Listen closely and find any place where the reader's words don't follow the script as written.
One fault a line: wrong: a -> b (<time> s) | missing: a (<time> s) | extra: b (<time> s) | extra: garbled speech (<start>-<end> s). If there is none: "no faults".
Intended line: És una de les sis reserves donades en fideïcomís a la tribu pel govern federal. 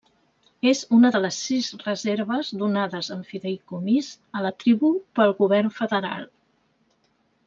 no faults